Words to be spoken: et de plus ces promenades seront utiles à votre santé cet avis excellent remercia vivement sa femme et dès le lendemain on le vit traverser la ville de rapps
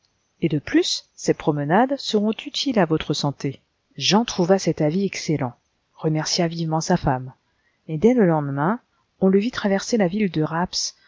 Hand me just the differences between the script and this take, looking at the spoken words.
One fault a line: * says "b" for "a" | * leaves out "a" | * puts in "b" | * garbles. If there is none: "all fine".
* puts in "jean trouva"